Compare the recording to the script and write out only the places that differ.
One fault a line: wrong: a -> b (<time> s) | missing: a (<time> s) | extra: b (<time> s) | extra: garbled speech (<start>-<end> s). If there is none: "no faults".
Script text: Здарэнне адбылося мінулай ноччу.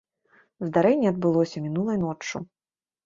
no faults